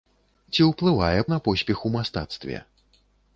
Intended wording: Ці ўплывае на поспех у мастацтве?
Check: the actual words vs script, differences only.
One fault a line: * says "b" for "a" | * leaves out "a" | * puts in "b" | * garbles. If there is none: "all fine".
all fine